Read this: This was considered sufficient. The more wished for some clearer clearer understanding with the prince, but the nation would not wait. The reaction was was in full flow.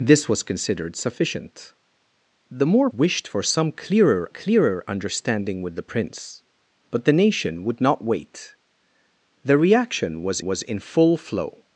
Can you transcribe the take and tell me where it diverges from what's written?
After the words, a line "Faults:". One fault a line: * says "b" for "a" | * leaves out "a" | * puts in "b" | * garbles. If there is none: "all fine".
This was considered sufficient. The more wished for some clearer clearer understanding with the prince, but the nation would not wait. The reaction was was in full flow.
Faults:
all fine